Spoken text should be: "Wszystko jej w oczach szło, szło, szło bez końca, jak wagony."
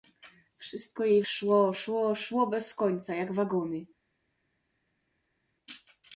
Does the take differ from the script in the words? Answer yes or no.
yes